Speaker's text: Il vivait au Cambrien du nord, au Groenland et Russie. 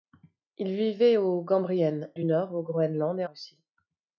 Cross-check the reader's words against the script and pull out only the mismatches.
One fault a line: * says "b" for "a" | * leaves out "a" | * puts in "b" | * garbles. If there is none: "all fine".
all fine